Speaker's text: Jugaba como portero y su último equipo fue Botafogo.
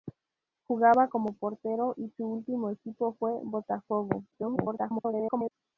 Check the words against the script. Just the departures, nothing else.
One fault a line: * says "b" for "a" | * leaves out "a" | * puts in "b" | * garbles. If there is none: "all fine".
* garbles